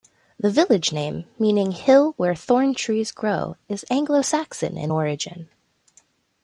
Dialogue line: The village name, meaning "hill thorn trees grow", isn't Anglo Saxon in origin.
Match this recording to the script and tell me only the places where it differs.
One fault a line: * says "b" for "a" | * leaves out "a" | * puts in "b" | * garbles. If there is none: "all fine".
* puts in "where"
* says "is" for "isn't"